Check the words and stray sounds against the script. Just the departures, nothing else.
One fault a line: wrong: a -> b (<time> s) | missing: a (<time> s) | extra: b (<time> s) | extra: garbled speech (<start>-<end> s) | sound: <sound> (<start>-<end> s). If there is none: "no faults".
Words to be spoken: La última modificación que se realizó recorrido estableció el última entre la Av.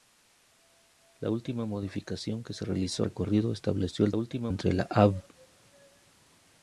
no faults